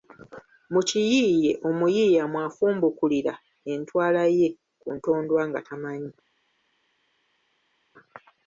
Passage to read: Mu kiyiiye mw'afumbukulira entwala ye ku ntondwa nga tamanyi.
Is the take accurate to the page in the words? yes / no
no